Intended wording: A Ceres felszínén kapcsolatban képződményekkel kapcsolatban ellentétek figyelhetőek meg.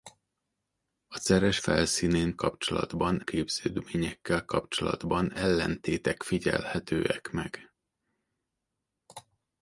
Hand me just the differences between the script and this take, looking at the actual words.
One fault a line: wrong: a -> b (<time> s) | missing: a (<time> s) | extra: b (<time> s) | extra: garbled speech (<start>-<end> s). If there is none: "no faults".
no faults